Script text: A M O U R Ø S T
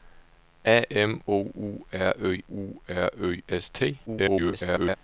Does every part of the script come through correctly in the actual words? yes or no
no